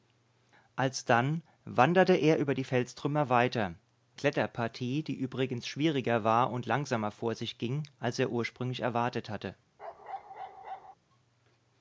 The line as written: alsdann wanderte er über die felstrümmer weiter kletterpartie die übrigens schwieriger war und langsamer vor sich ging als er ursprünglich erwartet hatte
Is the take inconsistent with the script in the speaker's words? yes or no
no